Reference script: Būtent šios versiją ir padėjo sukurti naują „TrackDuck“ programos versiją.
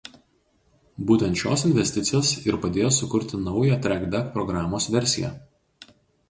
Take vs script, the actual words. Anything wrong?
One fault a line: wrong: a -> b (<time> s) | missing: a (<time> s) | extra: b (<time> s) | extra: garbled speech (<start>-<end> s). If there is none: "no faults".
wrong: versiją -> investicijos (1.7 s)